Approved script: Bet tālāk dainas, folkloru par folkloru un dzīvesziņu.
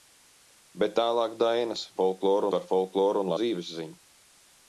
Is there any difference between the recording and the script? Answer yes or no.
no